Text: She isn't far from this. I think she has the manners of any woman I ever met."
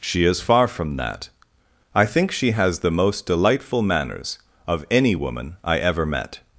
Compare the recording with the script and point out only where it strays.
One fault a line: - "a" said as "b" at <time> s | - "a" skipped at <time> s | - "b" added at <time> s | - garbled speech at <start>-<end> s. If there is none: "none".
- "isn't" said as "is" at 0.2 s
- "this" said as "that" at 0.9 s
- "most delightful" added at 2.9 s